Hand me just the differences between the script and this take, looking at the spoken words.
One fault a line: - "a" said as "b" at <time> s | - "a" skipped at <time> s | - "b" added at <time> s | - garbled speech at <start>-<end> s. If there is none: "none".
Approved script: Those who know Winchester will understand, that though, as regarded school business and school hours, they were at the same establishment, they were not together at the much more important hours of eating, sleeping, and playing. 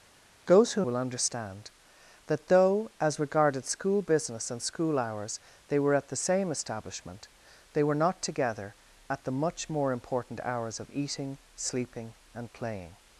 - "know Winchester" skipped at 0.9 s